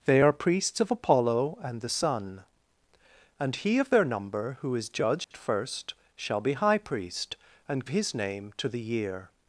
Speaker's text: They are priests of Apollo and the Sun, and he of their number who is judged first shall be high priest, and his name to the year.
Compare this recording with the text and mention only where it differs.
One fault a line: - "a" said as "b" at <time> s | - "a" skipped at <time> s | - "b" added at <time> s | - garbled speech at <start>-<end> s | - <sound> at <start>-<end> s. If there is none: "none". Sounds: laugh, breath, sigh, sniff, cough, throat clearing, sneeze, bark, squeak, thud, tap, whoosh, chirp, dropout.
- dropout at 5.2-5.3 s